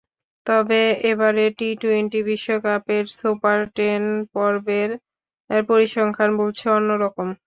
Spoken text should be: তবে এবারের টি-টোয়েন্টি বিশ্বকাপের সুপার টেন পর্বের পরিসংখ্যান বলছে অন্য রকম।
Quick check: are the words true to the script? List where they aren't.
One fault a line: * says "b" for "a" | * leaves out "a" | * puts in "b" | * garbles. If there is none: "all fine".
all fine